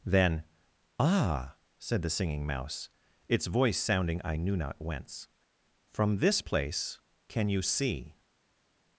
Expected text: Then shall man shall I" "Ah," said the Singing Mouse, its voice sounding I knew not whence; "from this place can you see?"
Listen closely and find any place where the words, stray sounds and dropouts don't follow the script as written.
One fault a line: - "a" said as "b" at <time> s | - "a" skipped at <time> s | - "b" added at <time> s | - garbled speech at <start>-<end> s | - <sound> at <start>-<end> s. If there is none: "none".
- "shall man shall I" skipped at 0.4 s